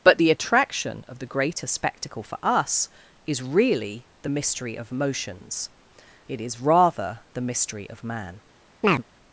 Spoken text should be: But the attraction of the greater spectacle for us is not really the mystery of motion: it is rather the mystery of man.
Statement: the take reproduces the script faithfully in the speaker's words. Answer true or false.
false